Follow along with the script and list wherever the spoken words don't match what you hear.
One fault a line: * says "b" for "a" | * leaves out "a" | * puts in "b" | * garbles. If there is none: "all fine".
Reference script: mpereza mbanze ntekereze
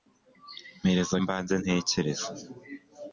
all fine